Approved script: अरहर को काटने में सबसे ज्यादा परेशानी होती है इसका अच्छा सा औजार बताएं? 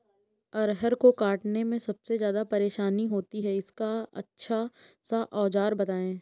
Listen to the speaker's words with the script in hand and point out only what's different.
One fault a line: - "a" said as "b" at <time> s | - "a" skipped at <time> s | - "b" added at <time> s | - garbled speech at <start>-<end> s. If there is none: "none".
none